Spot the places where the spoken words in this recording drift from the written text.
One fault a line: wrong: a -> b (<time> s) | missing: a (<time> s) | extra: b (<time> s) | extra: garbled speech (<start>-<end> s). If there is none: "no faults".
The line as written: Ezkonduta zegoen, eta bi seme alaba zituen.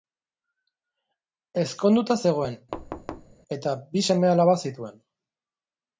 no faults